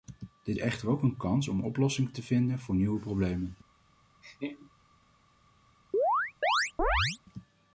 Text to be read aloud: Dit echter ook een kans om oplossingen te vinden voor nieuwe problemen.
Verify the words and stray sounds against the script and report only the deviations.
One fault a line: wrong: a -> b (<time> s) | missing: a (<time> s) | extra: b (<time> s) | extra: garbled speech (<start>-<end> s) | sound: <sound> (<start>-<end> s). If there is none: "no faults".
sound: laugh (4.2-4.7 s)
sound: chirp (5.9-7.2 s)